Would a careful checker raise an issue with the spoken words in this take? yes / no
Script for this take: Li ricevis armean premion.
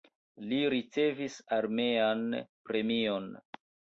no